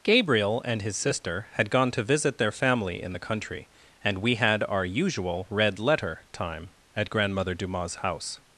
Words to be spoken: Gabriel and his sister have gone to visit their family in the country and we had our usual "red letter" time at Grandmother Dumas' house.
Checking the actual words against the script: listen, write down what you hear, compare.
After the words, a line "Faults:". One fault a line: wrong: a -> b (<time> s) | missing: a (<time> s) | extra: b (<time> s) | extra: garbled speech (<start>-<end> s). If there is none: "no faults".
Gabriel and his sister had gone to visit their family in the country and we had our usual "red letter" time at Grandmother Dumas' house.
Faults:
wrong: have -> had (1.5 s)